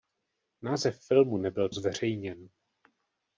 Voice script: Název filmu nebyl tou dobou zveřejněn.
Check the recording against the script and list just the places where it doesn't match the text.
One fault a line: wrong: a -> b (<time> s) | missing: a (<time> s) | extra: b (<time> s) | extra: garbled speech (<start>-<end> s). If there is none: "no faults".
missing: tou dobou (1.7 s)